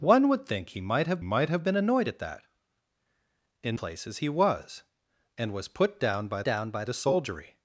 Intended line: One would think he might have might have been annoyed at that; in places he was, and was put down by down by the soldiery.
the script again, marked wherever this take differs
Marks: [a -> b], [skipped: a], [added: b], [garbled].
One would think he might have might have been annoyed at that; in places he was, and was put down by down by the soldiery.